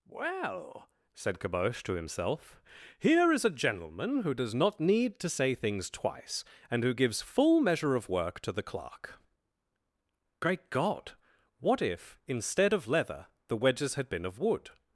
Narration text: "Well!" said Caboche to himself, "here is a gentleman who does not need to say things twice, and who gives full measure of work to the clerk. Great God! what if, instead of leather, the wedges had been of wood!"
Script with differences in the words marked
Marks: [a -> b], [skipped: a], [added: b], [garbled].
"Well!" said Caboche to himself, "here is a gentleman who does not need to say things twice, and who gives full measure of work to the clerk. Great God! what if, instead of leather, the wedges had been of wood!"